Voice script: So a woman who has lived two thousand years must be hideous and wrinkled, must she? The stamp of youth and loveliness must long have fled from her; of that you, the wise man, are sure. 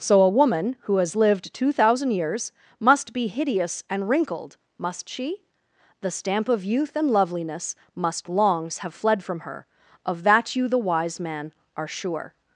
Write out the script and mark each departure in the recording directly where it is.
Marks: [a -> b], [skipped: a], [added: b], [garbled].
So a woman who has lived two thousand years must be hideous and wrinkled, must she? The stamp of youth and loveliness must [long -> longs] have fled from her; of that you, the wise man, are sure.